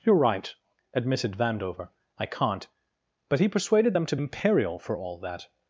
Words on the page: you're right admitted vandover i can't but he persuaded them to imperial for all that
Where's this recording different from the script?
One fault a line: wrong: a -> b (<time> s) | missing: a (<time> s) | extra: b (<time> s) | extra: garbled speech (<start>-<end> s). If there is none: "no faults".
no faults